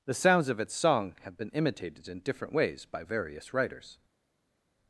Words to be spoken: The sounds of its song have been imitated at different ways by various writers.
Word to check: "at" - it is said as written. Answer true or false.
false